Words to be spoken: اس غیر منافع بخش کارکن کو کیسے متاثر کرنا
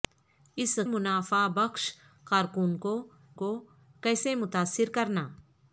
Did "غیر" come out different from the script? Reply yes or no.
yes